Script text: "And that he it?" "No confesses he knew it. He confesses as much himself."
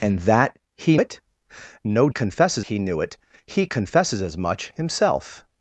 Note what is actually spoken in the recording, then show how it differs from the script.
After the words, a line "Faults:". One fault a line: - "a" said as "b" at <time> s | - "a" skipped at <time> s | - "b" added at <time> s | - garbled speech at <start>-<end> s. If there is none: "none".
"And that he it?" "No confesses he knew it. He confesses as much himself."
Faults:
none